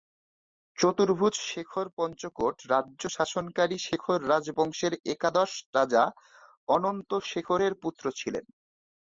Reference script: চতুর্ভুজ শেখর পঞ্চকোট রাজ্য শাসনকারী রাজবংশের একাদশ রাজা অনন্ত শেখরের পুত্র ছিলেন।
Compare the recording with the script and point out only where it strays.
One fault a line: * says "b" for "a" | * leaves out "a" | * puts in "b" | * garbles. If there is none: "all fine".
* puts in "শেখর"